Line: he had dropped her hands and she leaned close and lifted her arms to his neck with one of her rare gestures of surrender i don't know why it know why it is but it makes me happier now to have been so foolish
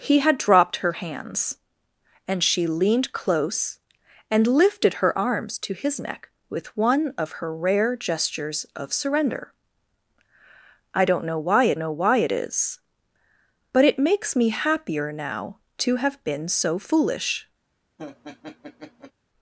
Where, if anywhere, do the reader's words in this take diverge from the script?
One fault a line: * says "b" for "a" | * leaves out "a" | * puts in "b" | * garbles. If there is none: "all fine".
all fine